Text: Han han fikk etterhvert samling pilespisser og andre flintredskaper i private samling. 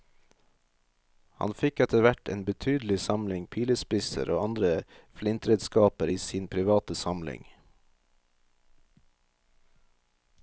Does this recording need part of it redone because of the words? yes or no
yes